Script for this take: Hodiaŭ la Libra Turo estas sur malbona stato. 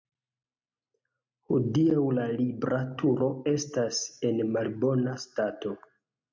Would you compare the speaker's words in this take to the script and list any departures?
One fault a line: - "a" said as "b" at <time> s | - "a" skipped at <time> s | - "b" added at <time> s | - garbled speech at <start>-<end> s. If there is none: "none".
- "sur" said as "en" at 4.3 s